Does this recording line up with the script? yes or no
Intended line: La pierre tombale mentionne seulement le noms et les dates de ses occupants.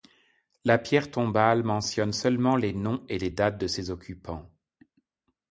no